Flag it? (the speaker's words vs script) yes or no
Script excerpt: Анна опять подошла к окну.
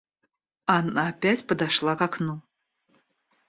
no